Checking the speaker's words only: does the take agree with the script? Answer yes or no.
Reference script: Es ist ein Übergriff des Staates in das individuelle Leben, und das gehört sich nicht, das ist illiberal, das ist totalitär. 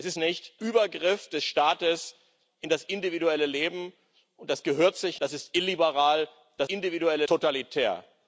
no